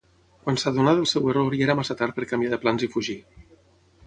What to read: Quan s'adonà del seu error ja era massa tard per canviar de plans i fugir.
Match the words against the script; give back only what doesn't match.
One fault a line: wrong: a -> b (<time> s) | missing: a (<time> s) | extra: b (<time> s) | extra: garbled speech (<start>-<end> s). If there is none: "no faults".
no faults